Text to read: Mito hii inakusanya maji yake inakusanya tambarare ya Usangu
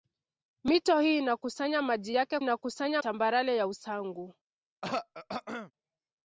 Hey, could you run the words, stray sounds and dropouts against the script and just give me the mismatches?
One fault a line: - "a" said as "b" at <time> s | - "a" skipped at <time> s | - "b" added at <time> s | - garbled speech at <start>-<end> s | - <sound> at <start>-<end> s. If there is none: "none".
- throat clearing at 4.8-5.7 s